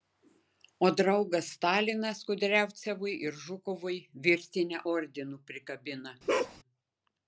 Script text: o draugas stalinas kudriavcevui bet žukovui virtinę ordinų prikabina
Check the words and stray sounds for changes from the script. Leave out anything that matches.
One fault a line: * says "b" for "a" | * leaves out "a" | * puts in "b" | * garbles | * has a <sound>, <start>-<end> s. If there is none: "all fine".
* says "ir" for "bet"
* has a bark, 6.3-6.6 s